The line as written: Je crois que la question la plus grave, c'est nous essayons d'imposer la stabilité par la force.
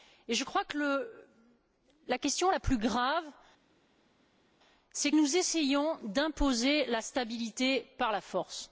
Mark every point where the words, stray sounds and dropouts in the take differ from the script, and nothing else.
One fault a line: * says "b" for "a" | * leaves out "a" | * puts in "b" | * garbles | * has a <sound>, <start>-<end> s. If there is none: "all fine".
all fine